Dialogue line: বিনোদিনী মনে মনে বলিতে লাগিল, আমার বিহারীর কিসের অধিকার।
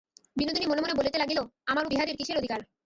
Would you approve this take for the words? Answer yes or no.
yes